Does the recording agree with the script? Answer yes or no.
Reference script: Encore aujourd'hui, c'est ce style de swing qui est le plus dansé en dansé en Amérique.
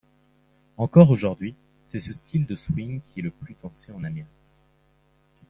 no